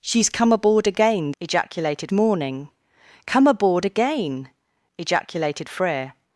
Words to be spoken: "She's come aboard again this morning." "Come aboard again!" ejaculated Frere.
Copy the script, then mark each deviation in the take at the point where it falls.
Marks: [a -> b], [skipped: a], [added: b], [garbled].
"She's come aboard again [this -> ejaculated] morning." "Come aboard again!" ejaculated Frere.